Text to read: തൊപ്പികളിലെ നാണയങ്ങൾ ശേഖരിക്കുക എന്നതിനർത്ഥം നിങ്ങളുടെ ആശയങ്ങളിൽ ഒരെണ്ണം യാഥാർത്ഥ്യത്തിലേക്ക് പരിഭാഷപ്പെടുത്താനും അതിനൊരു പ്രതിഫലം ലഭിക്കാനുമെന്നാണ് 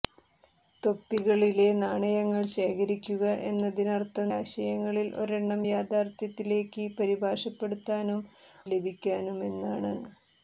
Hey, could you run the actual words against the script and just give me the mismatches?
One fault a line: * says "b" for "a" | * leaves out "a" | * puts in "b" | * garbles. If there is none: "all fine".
* leaves out "നിങ്ങളുടെ"
* leaves out "അതിനൊരു പ്രതിഫലം"